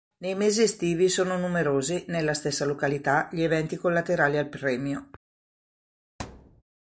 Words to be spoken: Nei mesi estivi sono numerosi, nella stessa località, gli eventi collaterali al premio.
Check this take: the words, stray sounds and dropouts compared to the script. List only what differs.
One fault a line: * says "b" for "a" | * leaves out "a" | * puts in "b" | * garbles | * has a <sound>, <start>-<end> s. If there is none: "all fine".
* has a thud, 6.2-6.6 s